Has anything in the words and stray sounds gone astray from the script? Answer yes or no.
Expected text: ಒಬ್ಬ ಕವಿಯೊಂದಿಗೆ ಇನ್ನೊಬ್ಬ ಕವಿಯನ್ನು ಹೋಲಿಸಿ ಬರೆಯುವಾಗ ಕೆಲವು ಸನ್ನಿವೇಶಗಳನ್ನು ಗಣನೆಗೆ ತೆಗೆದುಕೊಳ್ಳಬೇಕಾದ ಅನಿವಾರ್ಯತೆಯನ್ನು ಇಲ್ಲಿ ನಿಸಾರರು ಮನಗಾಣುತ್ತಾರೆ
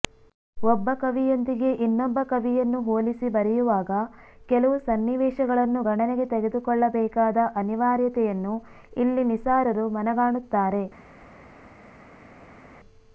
no